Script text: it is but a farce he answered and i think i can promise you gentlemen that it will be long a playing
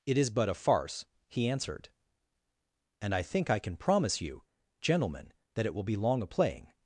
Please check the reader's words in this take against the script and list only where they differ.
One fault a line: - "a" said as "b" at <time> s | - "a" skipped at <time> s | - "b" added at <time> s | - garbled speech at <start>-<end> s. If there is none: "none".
none